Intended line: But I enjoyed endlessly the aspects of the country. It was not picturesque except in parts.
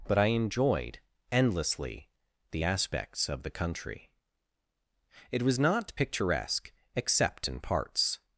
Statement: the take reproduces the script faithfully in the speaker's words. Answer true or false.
true